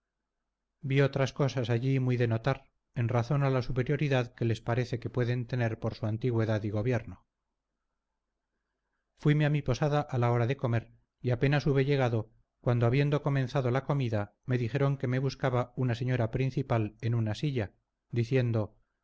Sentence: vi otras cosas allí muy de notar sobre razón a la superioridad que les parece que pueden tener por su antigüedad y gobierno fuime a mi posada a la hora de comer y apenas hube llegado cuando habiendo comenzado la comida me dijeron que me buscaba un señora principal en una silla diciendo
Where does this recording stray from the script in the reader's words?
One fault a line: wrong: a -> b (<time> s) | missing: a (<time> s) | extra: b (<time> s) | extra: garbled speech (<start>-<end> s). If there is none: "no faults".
wrong: sobre -> en (3.0 s)
wrong: un -> una (15.8 s)